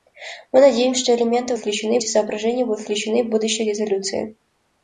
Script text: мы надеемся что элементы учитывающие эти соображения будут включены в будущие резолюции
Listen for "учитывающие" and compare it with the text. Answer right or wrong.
wrong